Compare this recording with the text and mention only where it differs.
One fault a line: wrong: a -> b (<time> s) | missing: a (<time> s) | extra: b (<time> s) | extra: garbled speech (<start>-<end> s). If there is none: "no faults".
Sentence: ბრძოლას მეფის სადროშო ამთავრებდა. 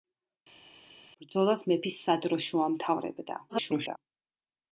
extra: garbled speech (3.5-4.0 s)